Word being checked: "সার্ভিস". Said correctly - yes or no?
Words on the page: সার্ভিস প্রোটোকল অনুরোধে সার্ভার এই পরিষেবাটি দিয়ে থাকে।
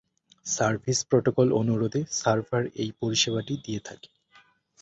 yes